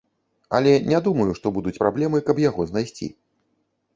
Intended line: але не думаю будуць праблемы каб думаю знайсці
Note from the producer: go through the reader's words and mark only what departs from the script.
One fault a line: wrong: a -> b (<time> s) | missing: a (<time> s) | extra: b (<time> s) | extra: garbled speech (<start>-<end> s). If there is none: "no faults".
extra: што (1.4 s)
wrong: думаю -> яго (2.4 s)